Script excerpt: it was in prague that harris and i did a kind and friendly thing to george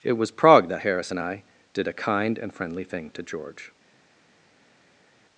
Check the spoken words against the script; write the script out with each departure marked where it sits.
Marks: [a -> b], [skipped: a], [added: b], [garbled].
it was [skipped: in] prague that harris and i did a kind and friendly thing to george